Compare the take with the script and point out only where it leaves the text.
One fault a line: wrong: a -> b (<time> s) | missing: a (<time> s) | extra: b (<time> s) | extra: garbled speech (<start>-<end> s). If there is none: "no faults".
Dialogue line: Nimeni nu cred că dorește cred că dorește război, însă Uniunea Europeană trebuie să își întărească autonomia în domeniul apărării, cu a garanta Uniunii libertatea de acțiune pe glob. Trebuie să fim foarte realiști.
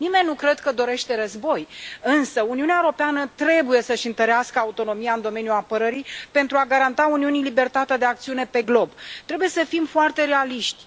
missing: cred că dorește (1.1 s)
wrong: cu -> pentru (6.3 s)